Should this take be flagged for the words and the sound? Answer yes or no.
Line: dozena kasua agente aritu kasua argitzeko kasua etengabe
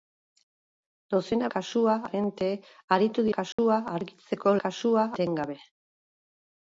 yes